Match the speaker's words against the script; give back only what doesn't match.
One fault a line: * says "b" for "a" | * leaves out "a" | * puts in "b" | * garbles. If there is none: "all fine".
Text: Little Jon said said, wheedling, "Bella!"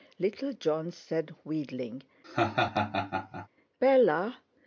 * leaves out "said"